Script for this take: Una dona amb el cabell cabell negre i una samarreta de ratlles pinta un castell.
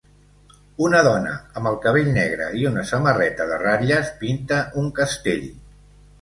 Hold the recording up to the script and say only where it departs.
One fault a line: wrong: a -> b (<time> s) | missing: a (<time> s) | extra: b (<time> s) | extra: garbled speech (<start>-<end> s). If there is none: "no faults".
missing: cabell (2.1 s)